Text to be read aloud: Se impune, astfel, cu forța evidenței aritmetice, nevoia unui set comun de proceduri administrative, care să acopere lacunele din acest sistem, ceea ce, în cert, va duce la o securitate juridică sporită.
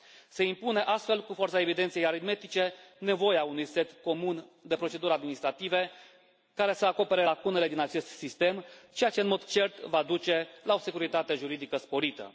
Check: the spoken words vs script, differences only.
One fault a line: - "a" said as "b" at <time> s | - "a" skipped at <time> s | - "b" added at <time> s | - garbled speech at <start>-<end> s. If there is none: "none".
- "mod" added at 9.3 s